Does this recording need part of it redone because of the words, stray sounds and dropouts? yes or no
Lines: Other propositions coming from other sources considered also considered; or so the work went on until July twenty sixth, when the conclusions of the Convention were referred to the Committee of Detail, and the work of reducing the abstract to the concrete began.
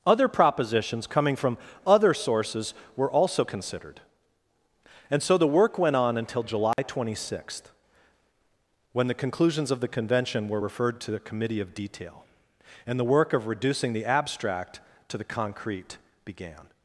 yes